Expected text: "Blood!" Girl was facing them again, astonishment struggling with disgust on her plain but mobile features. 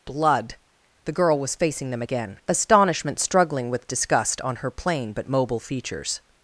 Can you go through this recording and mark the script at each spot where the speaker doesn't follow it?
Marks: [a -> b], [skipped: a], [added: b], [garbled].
"Blood!" [added: The] Girl was facing them again, astonishment struggling with disgust on her plain but mobile features.